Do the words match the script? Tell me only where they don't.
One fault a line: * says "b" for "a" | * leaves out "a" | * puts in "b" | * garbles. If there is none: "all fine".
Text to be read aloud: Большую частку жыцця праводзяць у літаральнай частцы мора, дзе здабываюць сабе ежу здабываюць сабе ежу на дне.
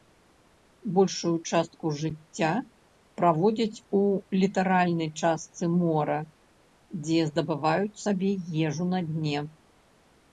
* leaves out "здабываюць сабе ежу"